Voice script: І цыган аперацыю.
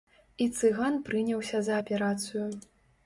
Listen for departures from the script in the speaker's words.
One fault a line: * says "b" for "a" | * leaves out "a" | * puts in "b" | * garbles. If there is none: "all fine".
* puts in "прыняўся за"